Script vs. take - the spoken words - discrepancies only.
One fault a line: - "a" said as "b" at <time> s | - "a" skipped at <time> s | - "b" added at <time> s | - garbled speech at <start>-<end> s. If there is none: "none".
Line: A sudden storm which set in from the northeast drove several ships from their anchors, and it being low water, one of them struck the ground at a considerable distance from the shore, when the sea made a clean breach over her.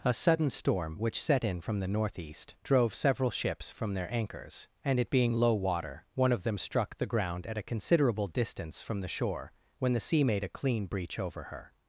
none